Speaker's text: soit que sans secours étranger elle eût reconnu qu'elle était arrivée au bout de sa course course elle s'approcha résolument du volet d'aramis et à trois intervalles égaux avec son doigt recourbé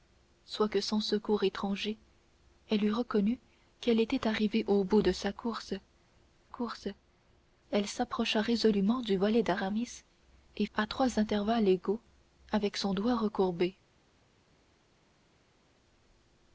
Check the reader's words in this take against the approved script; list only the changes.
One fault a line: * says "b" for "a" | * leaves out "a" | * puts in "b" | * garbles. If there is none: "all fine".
all fine